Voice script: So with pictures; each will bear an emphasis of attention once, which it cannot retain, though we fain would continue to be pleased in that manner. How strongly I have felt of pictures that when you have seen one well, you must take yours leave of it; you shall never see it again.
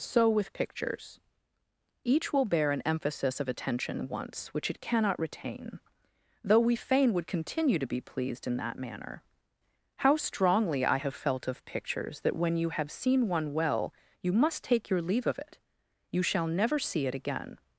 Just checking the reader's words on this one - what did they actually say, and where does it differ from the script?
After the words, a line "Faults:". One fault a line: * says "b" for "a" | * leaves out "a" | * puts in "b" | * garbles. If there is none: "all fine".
So with pictures; each will bear an emphasis of attention once, which it cannot retain, though we fain would continue to be pleased in that manner. How strongly I have felt of pictures that when you have seen one well, you must take your leave of it; you shall never see it again.
Faults:
* says "your" for "yours"